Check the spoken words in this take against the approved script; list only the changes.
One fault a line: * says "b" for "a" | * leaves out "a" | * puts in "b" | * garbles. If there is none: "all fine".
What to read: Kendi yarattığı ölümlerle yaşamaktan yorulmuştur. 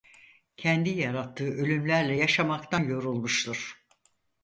all fine